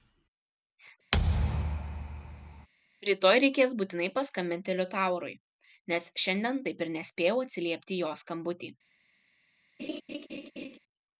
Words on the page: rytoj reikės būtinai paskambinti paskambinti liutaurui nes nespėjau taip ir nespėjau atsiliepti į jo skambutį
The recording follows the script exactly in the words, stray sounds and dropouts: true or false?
false